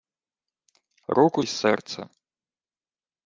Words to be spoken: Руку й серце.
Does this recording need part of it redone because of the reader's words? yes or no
no